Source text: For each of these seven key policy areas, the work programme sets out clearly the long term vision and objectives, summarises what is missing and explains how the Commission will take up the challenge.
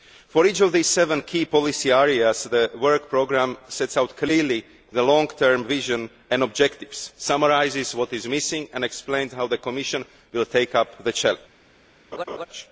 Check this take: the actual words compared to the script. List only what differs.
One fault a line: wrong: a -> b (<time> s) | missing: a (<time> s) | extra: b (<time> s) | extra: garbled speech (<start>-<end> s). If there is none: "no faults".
no faults